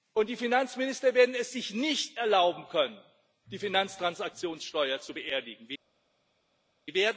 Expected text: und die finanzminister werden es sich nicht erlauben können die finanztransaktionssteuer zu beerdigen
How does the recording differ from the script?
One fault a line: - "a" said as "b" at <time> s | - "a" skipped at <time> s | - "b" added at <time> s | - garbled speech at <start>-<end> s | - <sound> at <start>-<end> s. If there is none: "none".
none